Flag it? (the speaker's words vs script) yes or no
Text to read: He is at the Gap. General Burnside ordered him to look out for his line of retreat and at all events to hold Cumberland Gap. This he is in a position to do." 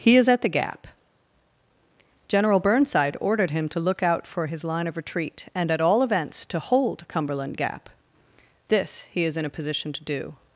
no